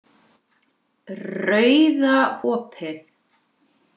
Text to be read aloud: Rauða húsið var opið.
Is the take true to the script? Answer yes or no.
no